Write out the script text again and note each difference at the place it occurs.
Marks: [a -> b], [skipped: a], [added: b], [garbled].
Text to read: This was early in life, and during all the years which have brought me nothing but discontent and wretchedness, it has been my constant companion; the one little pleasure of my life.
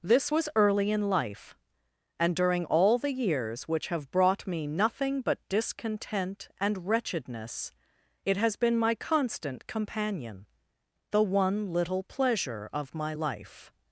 This was early in life, and during all the years which have brought me nothing but discontent and wretchedness, it has been my constant companion; the one little pleasure of my life.